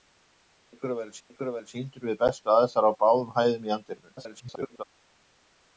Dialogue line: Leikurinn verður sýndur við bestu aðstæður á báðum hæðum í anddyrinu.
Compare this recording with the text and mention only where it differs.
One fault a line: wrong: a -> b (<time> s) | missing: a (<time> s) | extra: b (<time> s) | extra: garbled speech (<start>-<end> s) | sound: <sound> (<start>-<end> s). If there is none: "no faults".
extra: leikurinn verður (1.3 s)
extra: garbled speech (4.2-4.8 s)